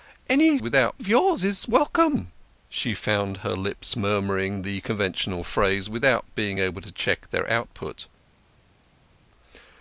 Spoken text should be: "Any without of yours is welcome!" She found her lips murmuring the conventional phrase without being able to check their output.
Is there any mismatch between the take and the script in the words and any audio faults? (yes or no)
no